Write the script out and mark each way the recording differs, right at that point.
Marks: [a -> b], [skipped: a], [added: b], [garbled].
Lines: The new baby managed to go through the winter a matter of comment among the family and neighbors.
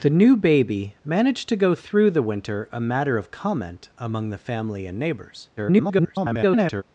The new baby managed to go through the winter a matter of comment among the family and neighbors. [garbled]